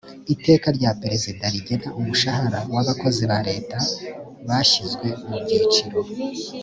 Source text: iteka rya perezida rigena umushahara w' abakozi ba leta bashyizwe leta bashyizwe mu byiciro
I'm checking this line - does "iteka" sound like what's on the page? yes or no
yes